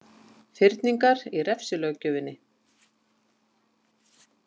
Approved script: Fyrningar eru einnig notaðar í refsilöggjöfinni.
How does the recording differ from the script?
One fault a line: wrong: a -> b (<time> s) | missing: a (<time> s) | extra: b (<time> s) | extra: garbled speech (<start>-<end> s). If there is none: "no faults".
missing: eru einnig notaðar (1.2 s)